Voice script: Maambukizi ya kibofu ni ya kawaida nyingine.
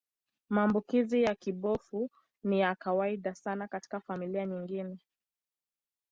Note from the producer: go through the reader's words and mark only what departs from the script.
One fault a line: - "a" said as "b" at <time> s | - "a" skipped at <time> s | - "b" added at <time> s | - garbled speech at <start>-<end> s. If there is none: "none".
- "sana katika familia" added at 3.4 s